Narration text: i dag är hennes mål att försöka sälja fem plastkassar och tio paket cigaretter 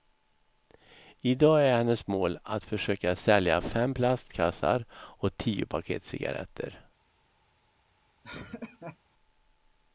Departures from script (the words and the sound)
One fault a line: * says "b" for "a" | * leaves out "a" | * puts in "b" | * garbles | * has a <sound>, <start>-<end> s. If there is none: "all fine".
* has a laugh, 8.2-9.0 s